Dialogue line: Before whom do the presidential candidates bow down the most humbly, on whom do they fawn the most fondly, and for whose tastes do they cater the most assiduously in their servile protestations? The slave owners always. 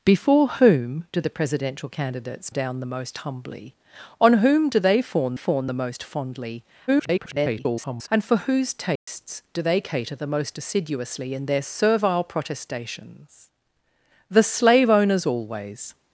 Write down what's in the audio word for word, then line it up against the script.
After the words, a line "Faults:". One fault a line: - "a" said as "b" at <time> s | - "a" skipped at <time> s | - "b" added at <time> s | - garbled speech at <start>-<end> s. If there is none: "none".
Before whom do the presidential candidates down the most humbly, on whom do they fawn fawn the most fondly, [garbled] and for whose tastes do they cater the most assiduously in their servile protestations? The slave owners always.
Faults:
- "bow" skipped at 2.5 s
- "fawn" added at 5.3 s
- garbled speech at 6.9-8.1 s